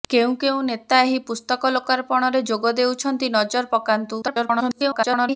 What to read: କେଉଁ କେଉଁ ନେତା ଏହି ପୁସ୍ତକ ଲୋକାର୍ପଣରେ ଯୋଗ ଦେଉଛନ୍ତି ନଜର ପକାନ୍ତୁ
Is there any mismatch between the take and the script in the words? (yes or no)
yes